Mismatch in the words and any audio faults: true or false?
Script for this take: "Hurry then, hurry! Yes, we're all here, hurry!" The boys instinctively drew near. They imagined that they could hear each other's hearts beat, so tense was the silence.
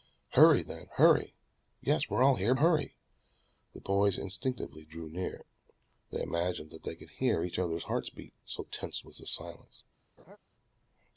true